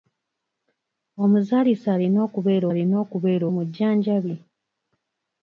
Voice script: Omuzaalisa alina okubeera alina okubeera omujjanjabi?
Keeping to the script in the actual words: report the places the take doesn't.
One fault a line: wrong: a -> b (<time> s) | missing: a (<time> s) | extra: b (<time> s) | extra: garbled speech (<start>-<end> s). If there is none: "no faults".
no faults